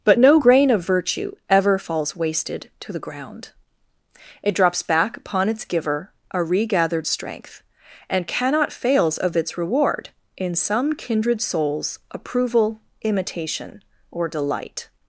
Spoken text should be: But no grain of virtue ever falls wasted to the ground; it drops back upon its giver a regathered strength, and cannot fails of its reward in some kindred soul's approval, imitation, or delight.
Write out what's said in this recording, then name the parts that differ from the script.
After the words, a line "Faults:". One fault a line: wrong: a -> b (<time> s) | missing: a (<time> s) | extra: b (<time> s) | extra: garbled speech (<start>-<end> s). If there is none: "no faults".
But no grain of virtue ever falls wasted to the ground; it drops back upon its giver a regathered strength, and cannot fails of its reward in some kindred soul's approval, imitation, or delight.
Faults:
no faults